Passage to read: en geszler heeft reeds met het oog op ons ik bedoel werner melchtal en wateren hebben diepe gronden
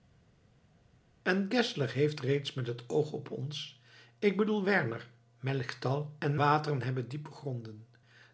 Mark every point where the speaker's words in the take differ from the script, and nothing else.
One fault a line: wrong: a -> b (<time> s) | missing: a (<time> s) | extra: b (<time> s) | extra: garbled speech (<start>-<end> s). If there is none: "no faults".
no faults